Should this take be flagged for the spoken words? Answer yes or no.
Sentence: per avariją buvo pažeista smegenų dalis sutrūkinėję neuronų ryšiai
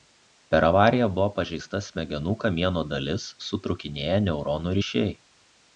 yes